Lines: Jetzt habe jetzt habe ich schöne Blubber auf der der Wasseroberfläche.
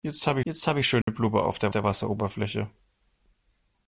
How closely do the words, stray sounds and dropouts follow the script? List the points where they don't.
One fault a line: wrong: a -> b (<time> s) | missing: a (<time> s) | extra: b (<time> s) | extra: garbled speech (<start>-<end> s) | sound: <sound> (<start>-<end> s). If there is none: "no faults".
sound: dropout (1.0-1.1 s)